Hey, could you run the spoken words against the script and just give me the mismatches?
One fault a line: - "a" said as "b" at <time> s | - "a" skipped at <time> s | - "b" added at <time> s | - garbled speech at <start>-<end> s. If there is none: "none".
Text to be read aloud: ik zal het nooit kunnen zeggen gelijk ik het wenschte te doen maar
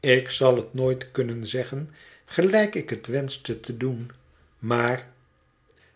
none